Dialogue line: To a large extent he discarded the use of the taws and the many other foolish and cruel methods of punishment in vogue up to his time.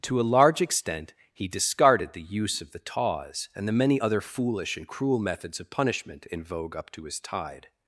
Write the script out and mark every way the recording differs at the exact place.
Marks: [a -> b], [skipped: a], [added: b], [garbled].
To a large extent he discarded the use of the taws and the many other foolish and cruel methods of punishment in vogue up to his [time. -> tide]